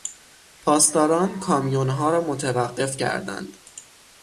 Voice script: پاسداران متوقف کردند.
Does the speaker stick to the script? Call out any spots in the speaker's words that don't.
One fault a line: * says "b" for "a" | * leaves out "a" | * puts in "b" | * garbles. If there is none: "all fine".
* puts in "کامیونها را"